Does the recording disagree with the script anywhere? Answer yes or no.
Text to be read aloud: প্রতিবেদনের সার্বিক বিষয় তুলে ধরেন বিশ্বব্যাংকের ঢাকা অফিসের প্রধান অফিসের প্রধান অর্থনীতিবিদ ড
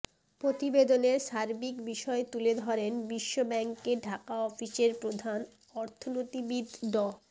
yes